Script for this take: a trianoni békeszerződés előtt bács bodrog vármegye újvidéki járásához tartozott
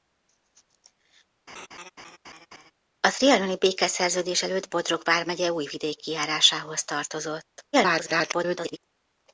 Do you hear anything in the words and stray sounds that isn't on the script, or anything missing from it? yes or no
yes